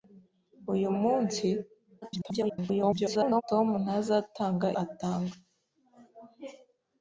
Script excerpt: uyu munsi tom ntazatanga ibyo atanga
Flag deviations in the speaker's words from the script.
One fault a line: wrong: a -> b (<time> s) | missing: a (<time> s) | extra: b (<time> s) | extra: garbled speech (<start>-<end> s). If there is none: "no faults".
extra: garbled speech (2.0-3.4 s)
missing: ibyo (4.7 s)